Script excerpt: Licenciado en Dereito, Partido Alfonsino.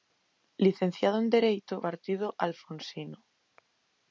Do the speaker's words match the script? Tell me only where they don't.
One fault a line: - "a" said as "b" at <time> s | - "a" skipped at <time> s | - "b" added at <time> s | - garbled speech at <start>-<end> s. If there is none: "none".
none